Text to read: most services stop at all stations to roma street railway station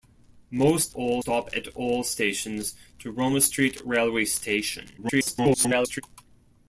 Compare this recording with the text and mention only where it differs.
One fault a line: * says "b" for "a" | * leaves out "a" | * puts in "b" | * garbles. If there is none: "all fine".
* says "all" for "services"
* garbles